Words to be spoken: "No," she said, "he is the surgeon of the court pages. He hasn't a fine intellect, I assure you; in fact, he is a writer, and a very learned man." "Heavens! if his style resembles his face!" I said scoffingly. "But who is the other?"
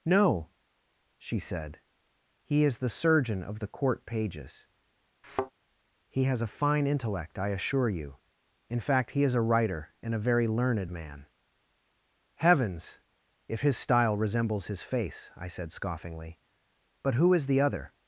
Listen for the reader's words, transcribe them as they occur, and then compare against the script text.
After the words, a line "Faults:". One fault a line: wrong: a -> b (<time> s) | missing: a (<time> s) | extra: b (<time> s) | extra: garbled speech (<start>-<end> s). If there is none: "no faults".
"No," she said, "he is the surgeon of the court pages. He has a fine intellect, I assure you; in fact, he is a writer, and a very learned man." "Heavens! if his style resembles his face!" I said scoffingly. "But who is the other?"
Faults:
wrong: hasn't -> has (6.2 s)